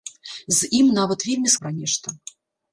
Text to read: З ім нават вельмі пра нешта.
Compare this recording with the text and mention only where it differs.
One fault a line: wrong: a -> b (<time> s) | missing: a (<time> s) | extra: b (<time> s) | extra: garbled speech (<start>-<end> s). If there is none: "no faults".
no faults